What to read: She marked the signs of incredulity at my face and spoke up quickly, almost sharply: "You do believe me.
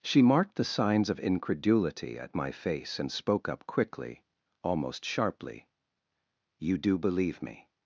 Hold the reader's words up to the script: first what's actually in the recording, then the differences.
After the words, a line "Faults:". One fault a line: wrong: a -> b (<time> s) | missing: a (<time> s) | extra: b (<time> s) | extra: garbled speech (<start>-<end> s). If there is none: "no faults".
She marked the signs of incredulity at my face and spoke up quickly, almost sharply: "You do believe me.
Faults:
no faults